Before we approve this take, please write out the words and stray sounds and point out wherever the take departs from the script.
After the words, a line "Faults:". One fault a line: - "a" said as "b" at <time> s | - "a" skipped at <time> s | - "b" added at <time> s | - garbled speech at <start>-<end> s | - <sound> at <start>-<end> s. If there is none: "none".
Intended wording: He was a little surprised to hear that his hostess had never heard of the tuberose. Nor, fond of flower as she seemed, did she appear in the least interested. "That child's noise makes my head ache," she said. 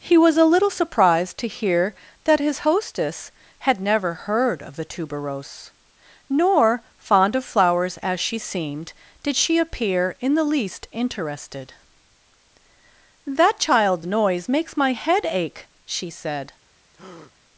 He was a little surprised to hear that his hostess had never heard of the tuberose. Nor, fond of flowers as she seemed, did she appear in the least interested. "That child's noise makes my head ache," she said.
Faults:
- "flower" said as "flowers" at 7.4 s
- breath at 16.9-17.3 s